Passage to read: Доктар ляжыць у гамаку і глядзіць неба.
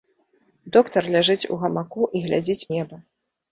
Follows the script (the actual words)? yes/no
yes